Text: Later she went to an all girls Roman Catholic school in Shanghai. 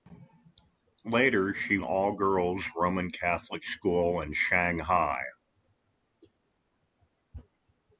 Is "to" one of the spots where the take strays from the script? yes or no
yes